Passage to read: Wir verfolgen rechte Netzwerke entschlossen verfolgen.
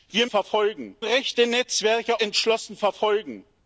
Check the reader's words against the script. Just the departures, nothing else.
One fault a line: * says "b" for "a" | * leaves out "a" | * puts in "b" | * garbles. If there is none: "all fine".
all fine